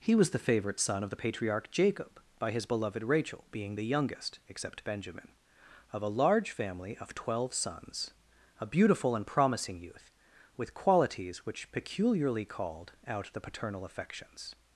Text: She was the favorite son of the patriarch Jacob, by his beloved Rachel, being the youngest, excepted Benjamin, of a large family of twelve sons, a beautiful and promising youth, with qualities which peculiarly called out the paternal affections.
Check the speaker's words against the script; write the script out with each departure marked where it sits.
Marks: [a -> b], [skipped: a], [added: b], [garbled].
[She -> He] was the favorite son of the patriarch Jacob, by his beloved Rachel, being the youngest, [excepted -> except] Benjamin, of a large family of twelve sons, a beautiful and promising youth, with qualities which peculiarly called out the paternal affections.